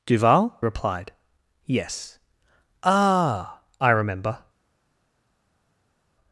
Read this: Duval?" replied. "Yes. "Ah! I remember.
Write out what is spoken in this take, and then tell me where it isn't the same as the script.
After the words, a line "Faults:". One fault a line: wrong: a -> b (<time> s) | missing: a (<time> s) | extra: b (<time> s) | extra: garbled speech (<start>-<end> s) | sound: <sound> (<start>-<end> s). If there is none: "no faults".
Duval?" replied. "Yes. "Ah! I remember.
Faults:
no faults